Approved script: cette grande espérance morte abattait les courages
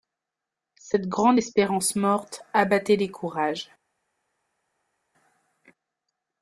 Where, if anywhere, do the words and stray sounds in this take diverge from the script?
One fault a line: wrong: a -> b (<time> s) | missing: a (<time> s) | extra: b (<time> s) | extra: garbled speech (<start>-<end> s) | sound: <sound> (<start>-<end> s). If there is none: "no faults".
no faults